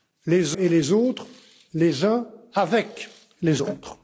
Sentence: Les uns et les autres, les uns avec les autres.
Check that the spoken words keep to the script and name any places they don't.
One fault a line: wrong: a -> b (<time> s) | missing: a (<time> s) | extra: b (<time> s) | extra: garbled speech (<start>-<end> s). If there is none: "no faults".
missing: uns (0.6 s)